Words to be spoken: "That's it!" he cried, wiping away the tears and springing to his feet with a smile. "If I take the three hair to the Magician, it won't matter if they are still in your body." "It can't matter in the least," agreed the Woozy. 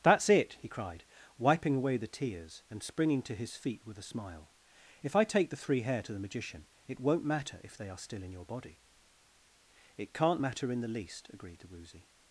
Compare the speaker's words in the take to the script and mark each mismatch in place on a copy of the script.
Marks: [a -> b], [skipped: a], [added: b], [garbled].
"That's it!" he cried, wiping away the tears and springing to his feet with a smile. "If I take the three hair to the Magician, it won't matter if they are still in your body." "It can't matter in the least," agreed the Woozy.